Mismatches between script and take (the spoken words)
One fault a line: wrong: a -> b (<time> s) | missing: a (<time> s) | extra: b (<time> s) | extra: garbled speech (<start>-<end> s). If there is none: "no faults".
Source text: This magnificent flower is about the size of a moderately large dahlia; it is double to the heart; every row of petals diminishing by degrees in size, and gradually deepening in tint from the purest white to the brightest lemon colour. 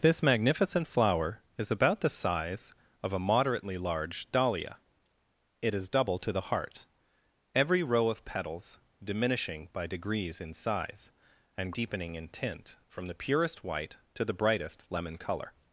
missing: gradually (11.7 s)